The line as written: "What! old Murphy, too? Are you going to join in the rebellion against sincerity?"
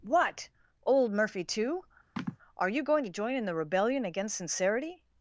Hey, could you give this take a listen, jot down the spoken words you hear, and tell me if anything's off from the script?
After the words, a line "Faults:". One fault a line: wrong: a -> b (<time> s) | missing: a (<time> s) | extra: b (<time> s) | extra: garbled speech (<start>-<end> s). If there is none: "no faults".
"What! old Murphy, too? Are you going to join in the rebellion against sincerity?"
Faults:
no faults